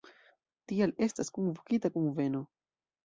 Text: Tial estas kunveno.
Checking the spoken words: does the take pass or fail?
fail